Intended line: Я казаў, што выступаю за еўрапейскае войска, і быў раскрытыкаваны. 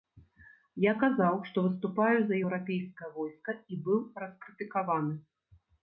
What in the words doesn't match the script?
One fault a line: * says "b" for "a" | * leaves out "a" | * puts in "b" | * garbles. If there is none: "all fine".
all fine